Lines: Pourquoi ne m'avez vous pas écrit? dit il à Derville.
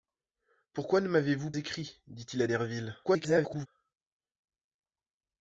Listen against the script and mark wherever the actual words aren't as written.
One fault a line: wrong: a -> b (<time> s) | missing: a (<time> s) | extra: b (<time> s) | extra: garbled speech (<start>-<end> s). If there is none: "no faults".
missing: pas (1.5 s)
extra: garbled speech (3.0-3.7 s)